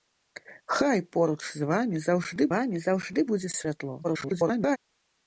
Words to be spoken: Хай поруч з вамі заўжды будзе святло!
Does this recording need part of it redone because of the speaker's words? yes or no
yes